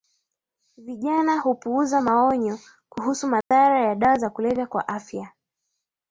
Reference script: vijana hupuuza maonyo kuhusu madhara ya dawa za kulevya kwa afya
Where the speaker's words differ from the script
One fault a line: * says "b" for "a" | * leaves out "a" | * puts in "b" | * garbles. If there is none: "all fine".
all fine